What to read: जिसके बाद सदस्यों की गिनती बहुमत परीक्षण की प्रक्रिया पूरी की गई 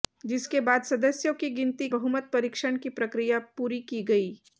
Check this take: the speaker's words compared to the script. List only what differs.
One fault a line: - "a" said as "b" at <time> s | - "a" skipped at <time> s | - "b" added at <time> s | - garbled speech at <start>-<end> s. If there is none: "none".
none